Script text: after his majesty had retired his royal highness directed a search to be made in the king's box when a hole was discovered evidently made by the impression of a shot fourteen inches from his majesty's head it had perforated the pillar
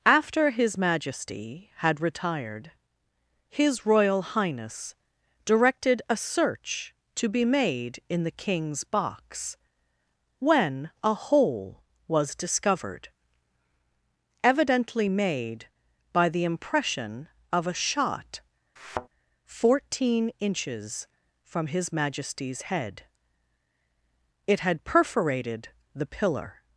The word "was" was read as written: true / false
true